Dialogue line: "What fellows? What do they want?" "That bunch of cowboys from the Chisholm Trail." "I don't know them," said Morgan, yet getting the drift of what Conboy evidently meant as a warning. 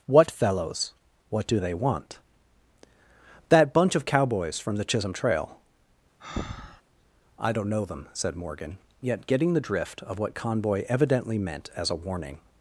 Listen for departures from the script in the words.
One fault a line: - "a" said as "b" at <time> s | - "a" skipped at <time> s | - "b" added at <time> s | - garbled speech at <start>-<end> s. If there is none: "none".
none